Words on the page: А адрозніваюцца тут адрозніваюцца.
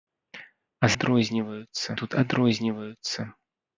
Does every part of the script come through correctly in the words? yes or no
yes